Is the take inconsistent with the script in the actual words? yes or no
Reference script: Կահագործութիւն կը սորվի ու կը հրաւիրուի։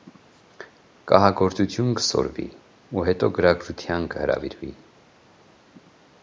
yes